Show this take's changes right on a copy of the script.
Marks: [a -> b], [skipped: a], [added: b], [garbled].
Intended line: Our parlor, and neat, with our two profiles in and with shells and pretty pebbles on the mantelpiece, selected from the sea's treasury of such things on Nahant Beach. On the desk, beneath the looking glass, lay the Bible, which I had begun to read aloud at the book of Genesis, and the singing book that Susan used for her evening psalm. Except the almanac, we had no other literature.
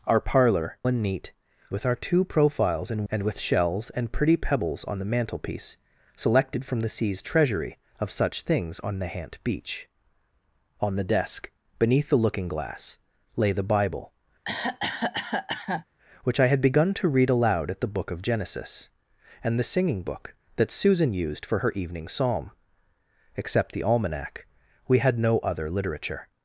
Our parlor, and neat, with our two profiles in and with shells and pretty pebbles on the mantelpiece, selected from the sea's treasury of such things on Nahant Beach. On the desk, beneath the looking glass, lay the Bible, which I had begun to read aloud at the book of Genesis, and the singing book that Susan used for her evening psalm. Except the almanac, we had no other literature.